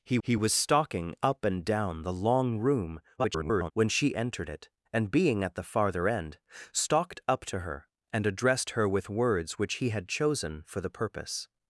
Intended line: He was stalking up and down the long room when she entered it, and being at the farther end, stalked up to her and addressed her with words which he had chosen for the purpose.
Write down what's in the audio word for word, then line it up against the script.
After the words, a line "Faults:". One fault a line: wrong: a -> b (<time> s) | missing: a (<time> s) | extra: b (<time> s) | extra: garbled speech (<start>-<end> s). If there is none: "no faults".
He he was stalking up and down the long room [garbled] when she entered it, and being at the farther end, stalked up to her and addressed her with words which he had chosen for the purpose.
Faults:
extra: he (0.2 s)
extra: garbled speech (3.2-3.7 s)